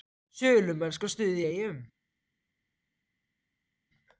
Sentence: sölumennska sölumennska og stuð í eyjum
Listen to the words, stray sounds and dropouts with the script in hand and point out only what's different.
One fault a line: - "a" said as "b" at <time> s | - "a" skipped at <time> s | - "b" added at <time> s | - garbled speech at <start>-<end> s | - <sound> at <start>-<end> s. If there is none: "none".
- "sölumennska" skipped at 1.1 s